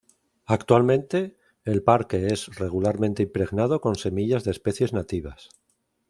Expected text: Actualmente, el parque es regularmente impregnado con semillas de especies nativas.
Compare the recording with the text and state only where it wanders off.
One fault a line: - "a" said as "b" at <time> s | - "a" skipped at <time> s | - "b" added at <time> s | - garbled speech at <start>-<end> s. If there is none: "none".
none